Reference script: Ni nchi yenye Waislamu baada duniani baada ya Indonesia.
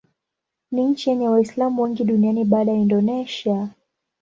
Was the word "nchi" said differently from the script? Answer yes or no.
no